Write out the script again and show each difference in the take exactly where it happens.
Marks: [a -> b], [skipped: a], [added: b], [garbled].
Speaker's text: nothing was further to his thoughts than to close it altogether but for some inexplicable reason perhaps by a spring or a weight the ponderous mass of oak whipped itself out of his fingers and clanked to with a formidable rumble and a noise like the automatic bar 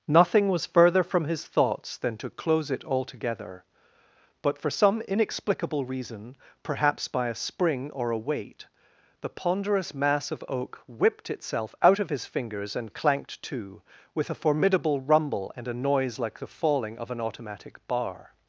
nothing was further [to -> from] his thoughts than to close it altogether but for some inexplicable reason perhaps by a spring or a weight the ponderous mass of oak whipped itself out of his fingers and clanked to with a formidable rumble and a noise like the [added: falling of an] automatic bar